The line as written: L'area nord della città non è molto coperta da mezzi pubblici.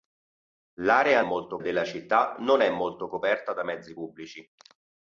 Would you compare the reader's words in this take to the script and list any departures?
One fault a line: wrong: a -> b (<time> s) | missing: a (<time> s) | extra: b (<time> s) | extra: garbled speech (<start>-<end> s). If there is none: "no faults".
wrong: nord -> molto (1.2 s)